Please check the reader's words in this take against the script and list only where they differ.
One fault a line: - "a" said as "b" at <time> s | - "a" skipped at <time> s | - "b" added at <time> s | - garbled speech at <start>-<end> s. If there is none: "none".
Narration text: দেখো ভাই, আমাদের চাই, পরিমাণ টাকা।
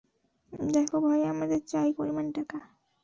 none